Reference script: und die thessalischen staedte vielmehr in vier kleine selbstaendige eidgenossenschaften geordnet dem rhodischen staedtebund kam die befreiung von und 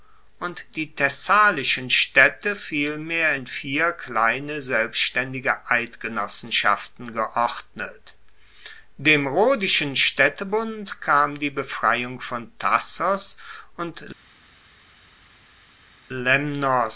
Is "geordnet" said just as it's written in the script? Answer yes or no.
yes